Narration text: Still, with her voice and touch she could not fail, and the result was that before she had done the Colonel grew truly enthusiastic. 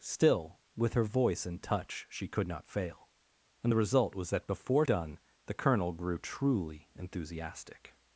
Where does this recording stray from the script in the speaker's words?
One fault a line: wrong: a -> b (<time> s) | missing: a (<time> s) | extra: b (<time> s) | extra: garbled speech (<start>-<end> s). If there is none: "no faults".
missing: she had (4.9 s)